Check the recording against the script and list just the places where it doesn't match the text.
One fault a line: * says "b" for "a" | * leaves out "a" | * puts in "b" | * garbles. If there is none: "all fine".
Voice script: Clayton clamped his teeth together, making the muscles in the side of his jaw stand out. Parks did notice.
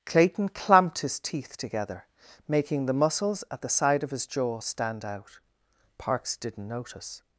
* says "at" for "in"
* says "didn't" for "did"